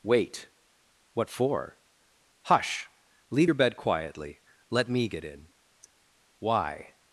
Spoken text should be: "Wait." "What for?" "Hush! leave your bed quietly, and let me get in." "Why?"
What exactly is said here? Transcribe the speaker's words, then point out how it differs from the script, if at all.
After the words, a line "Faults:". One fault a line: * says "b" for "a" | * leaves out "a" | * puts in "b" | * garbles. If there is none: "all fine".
"Wait." "What for?" "Hush! leave your bed quietly, let me get in." "Why?"
Faults:
* leaves out "and"